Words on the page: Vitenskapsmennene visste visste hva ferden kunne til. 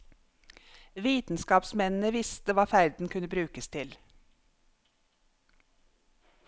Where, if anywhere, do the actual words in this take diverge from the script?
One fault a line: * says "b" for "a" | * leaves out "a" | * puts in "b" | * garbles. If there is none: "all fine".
* leaves out "visste"
* puts in "brukes"